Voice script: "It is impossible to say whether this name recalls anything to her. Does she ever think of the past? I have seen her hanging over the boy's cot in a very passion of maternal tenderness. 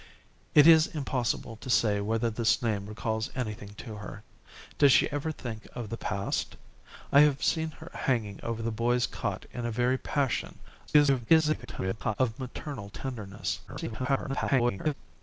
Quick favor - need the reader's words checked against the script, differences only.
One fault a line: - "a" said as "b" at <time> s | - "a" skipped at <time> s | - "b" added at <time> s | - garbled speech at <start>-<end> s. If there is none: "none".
- garbled speech at 10.9-12.2 s
- garbled speech at 13.7-14.9 s